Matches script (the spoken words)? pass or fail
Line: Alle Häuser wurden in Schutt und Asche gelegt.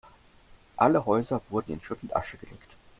pass